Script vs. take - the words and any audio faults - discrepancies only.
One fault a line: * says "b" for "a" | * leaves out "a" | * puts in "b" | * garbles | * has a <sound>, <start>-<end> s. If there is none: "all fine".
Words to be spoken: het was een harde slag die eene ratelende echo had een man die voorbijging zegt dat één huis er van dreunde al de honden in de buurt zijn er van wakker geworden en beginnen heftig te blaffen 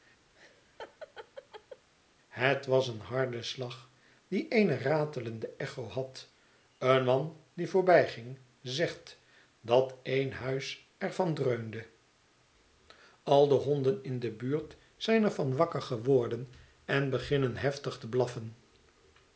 * has a laugh, 0.3-1.9 s